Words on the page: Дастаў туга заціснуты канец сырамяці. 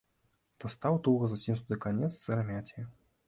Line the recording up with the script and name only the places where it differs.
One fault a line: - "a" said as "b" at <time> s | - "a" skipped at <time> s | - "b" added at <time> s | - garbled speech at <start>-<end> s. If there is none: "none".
none